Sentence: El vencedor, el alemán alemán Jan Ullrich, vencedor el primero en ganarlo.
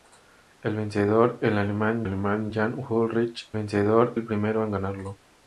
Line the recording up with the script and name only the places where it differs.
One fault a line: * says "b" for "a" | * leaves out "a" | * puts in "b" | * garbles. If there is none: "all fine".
all fine